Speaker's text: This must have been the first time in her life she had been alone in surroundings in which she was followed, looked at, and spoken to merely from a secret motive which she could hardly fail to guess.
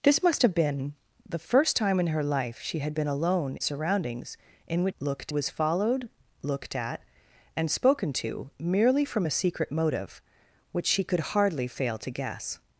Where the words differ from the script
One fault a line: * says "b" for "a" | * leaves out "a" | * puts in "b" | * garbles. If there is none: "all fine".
* leaves out "in"
* says "looked" for "she"